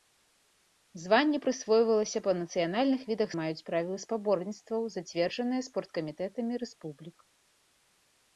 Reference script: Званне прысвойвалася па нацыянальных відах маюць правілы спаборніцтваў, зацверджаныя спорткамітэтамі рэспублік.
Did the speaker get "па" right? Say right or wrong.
right